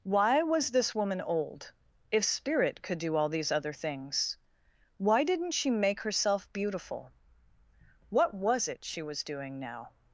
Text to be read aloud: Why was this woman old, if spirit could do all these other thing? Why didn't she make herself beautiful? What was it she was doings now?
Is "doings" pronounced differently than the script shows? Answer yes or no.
yes